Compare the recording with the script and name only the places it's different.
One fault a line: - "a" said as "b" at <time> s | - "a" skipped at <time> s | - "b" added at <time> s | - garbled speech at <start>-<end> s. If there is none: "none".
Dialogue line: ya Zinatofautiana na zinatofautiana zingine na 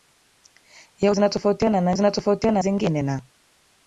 none